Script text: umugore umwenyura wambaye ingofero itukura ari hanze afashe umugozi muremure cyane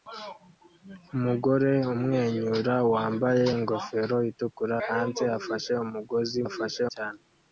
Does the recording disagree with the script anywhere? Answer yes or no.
yes